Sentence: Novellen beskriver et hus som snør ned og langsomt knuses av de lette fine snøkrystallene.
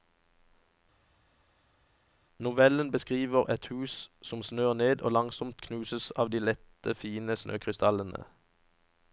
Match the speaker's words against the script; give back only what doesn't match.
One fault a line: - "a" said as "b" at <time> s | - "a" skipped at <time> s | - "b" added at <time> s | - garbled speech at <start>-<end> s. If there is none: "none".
none